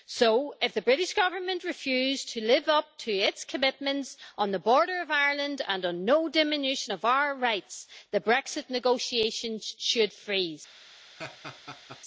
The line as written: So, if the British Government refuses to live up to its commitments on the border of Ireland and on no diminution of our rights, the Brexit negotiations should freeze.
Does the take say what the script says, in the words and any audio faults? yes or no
no